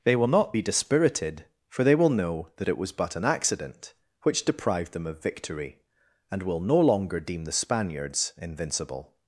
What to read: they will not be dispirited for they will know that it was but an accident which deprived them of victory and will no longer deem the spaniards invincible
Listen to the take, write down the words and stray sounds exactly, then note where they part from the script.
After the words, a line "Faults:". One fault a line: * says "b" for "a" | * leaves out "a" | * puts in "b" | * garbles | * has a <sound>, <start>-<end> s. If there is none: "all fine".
they will not be dispirited for they will know that it was but an accident which deprived them of victory and will no longer deem the spaniards invincible
Faults:
all fine